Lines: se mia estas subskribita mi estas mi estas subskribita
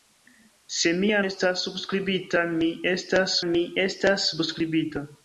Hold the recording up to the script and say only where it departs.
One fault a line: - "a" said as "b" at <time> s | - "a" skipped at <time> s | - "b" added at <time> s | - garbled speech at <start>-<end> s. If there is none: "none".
none